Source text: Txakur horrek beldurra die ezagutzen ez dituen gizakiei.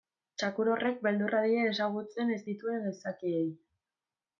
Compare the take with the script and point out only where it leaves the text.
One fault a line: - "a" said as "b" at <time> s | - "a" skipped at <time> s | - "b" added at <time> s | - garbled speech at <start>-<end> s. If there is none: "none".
none